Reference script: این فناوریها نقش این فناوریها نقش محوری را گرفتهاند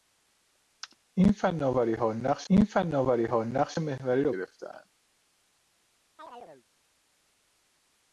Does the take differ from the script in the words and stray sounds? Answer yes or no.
yes